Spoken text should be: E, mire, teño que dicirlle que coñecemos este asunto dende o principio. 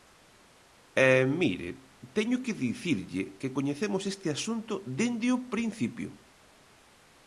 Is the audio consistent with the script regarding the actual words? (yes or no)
yes